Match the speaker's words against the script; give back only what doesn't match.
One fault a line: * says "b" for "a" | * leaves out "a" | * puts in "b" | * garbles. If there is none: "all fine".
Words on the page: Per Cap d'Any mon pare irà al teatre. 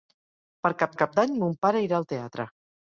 * puts in "Cap"